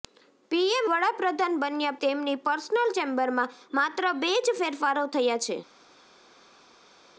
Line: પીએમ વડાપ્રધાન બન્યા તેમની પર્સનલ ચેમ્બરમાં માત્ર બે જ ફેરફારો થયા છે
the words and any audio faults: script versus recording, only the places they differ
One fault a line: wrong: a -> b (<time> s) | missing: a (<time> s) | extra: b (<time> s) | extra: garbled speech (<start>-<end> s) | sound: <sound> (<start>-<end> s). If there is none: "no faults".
no faults